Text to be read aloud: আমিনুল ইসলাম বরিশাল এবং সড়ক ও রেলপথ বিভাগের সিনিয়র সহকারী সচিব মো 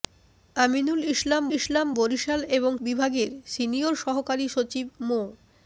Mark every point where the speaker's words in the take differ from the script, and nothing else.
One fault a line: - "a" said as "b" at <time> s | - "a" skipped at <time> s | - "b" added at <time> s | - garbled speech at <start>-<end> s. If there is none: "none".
- "ইসলাম" added at 1.6 s
- "সড়ক ও রেলপথ" skipped at 2.7 s